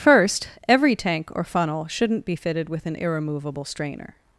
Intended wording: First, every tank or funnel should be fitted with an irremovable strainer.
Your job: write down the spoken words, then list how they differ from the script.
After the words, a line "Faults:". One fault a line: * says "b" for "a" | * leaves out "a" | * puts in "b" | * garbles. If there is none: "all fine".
First, every tank or funnel shouldn't be fitted with an irremovable strainer.
Faults:
* says "shouldn't" for "should"